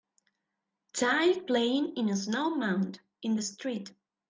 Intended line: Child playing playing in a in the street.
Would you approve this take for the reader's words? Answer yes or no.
no